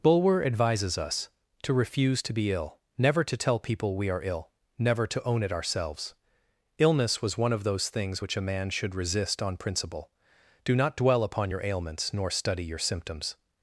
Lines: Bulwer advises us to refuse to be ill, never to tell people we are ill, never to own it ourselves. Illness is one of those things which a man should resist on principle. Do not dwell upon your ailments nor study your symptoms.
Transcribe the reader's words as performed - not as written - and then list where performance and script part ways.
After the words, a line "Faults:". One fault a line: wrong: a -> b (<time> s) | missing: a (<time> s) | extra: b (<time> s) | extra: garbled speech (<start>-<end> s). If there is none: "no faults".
Bulwer advises us to refuse to be ill, never to tell people we are ill, never to own it ourselves. Illness was one of those things which a man should resist on principle. Do not dwell upon your ailments nor study your symptoms.
Faults:
wrong: is -> was (7.2 s)